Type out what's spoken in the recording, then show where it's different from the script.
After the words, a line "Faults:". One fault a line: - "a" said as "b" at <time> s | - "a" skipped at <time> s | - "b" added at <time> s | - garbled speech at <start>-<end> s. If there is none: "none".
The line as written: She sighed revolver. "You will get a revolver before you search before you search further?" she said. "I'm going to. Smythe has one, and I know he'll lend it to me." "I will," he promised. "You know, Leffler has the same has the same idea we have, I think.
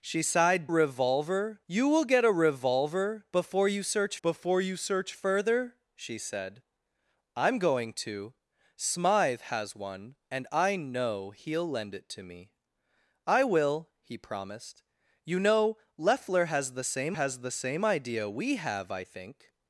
She sighed revolver. "You will get a revolver before you search before you search further?" she said. "I'm going to. Smythe has one, and I know he'll lend it to me." "I will," he promised. "You know, Leffler has the same has the same idea we have, I think.
Faults:
none